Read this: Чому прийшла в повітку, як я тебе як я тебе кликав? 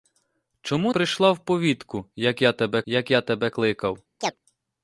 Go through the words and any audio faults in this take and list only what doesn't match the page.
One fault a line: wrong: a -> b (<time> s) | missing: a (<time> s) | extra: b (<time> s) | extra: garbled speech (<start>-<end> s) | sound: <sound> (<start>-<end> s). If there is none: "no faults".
sound: chirp (4.2-4.4 s)